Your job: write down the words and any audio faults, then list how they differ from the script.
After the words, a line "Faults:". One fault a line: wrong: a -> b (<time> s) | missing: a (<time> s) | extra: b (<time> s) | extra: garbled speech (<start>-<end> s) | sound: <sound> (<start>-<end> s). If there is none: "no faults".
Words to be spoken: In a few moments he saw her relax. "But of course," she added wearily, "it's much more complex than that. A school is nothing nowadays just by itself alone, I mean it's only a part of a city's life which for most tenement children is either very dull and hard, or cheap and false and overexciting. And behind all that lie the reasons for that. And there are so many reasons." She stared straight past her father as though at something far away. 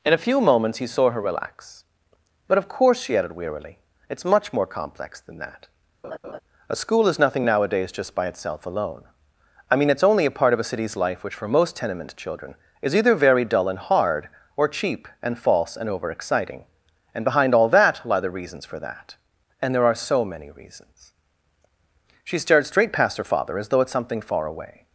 In a few moments he saw her relax. "But of course," she added wearily, "it's much more complex than that. A school is nothing nowadays just by itself alone, I mean it's only a part of a city's life which for most tenement children is either very dull and hard, or cheap and false and overexciting. And behind all that lie the reasons for that. And there are so many reasons." She stared straight past her father as though at something far away.
Faults:
sound: laugh (6.0-6.4 s)